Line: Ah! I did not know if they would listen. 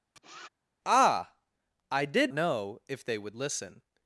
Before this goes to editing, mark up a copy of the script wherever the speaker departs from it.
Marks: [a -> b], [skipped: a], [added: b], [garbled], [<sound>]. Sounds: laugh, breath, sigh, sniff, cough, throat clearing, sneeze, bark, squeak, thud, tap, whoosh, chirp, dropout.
[sniff] Ah! I did [skipped: not] know if they would listen.